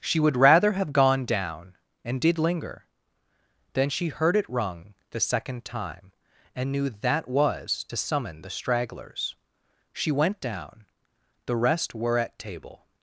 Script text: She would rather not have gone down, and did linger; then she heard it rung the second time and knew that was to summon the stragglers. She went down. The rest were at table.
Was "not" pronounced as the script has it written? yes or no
no